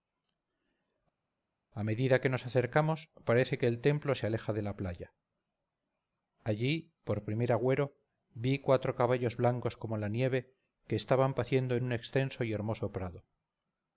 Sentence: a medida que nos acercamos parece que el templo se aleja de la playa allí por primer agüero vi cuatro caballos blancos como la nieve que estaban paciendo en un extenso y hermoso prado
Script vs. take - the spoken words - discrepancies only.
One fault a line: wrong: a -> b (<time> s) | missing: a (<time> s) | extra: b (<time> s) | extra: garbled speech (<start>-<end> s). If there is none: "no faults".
no faults